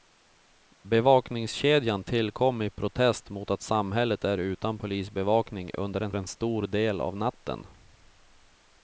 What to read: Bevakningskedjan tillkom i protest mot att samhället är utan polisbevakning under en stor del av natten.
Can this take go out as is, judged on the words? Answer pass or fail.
fail